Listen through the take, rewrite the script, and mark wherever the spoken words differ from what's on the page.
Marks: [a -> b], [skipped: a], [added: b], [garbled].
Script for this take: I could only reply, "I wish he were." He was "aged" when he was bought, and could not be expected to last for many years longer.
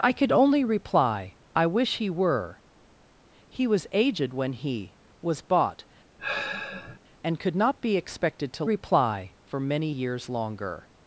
I could only reply, "I wish he were." He was "aged" when he was bought, and could not be expected to [last -> reply] for many years longer.